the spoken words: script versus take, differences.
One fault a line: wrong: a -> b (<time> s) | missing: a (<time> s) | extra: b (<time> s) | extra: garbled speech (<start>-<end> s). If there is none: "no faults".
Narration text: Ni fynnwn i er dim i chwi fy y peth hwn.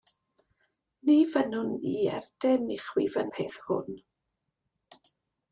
no faults